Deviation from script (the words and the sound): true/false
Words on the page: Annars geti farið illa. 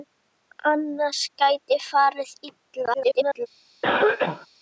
true